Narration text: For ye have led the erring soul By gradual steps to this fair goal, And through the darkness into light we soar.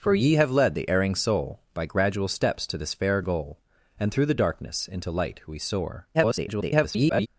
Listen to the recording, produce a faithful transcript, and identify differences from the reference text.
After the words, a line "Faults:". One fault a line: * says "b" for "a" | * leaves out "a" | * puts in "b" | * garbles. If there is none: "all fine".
For ye have led the erring soul By gradual steps to this fair goal, And through the darkness into light we soar. [garbled]
Faults:
* garbles